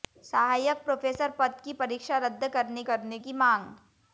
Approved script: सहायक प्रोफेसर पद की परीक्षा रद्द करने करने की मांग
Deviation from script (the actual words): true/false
false